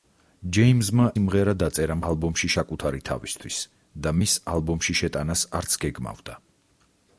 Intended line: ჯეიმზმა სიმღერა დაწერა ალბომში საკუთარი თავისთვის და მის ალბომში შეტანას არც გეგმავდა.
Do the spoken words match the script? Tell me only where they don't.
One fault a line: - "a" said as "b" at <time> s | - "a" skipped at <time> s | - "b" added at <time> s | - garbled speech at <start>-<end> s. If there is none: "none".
none